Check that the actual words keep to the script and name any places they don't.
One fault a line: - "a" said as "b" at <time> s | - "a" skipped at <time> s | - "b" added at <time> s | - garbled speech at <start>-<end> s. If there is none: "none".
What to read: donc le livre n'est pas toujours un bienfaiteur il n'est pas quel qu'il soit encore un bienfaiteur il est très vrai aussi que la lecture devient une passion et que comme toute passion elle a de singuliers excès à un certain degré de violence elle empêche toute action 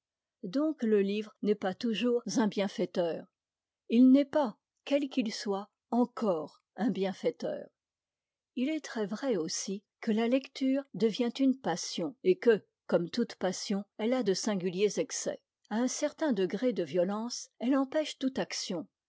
none